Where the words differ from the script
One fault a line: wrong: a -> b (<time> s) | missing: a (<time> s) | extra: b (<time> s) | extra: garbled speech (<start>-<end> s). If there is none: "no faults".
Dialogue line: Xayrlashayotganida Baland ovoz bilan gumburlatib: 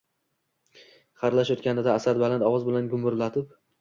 extra: Asad (2.0 s)